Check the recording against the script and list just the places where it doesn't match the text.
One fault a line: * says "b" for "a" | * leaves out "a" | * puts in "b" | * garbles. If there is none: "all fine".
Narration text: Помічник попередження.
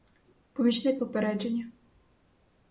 all fine